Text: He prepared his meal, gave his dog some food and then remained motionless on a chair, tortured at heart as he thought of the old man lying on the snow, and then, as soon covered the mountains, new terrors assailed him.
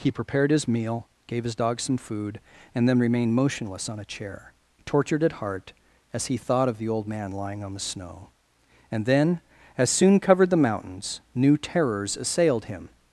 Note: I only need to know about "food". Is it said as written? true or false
true